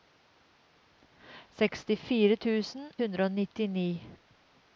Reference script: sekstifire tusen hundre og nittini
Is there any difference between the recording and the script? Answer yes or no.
no